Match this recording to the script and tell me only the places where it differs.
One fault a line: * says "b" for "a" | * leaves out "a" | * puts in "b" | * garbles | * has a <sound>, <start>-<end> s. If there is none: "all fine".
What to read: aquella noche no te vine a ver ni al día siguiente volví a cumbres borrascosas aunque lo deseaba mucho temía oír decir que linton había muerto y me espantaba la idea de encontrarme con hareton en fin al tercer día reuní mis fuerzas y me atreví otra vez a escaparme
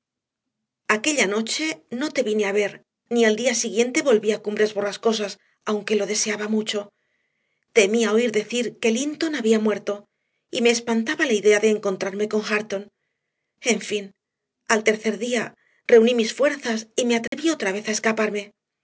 * has a dropout, 17.3-17.3 s